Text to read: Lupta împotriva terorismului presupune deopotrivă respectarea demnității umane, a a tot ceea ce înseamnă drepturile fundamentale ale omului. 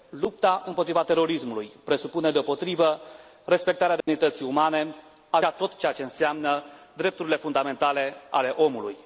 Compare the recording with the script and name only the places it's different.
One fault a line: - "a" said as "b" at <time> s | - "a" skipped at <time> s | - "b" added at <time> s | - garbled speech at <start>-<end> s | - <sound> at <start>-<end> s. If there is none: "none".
- dropout at 4.0-4.1 s